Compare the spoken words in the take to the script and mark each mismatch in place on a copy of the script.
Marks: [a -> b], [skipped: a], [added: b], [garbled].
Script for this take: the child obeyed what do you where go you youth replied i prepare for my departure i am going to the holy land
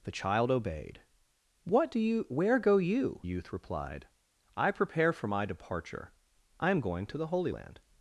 the child obeyed what do you where go you youth replied i prepare for my departure i am going to the holy land